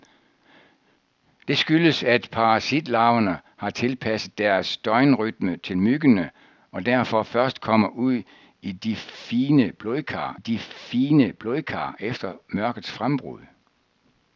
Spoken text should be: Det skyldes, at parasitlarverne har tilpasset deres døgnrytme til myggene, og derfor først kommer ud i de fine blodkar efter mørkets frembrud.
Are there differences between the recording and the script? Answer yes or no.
yes